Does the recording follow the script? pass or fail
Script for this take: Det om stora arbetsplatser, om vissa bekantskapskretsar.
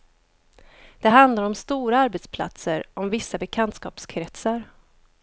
fail